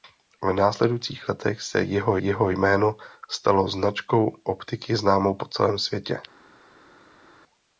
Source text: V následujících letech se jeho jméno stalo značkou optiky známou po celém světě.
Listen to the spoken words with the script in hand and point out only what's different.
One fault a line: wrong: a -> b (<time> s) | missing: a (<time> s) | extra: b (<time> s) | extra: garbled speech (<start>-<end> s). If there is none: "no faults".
extra: jeho (2.2 s)